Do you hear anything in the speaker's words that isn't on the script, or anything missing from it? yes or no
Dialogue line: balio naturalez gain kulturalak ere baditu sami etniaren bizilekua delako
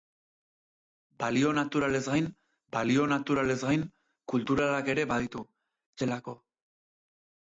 yes